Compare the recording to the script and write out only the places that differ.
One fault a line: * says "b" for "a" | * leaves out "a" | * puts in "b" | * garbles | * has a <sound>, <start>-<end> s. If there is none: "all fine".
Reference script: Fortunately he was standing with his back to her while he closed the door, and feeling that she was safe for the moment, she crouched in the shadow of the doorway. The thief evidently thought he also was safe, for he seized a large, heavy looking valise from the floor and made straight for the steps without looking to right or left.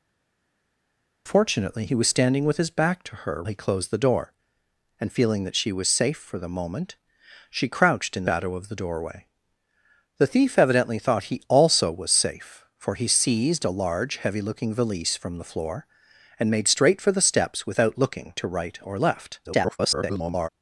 * leaves out "while"
* leaves out "the"
* garbles